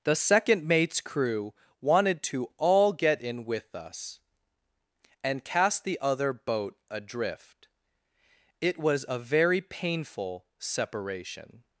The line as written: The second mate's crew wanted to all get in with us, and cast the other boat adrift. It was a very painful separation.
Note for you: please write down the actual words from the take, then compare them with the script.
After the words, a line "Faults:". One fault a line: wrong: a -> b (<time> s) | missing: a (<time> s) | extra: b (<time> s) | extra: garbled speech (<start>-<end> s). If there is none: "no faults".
The second mate's crew wanted to all get in with us, and cast the other boat adrift. It was a very painful separation.
Faults:
no faults